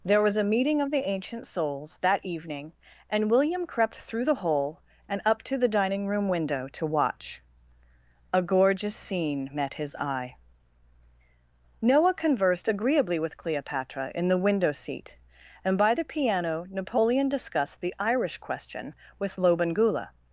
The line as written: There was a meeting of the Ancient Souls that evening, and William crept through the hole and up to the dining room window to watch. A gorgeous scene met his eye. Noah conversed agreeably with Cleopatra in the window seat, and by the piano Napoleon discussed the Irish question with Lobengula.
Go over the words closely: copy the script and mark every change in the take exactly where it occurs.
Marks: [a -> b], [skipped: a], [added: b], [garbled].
There was a meeting of the Ancient Souls that evening, and William crept through the hole and up to the dining room window to watch. A gorgeous scene met his eye. Noah conversed agreeably with Cleopatra in the window seat, and by the piano Napoleon discussed the Irish question with Lobengula.